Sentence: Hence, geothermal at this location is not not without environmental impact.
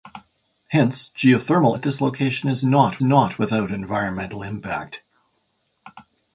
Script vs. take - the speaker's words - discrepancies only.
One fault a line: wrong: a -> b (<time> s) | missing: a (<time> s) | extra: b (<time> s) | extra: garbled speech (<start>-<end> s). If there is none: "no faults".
no faults